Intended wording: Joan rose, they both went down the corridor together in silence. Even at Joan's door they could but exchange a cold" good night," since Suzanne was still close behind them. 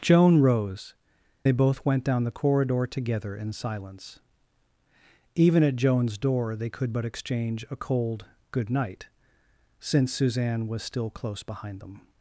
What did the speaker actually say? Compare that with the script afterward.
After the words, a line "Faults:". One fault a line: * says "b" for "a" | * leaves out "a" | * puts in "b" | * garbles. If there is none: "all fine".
Joan rose, they both went down the corridor together in silence. Even at Joan's door they could but exchange a cold" good night," since Suzanne was still close behind them.
Faults:
all fine